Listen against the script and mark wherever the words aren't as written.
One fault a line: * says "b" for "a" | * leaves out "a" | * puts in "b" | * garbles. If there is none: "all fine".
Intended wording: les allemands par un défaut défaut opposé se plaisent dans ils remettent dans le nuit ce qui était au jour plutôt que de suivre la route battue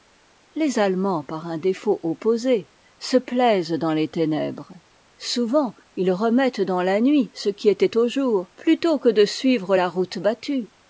* leaves out "défaut"
* puts in "les ténèbres souvent"
* says "la" for "le"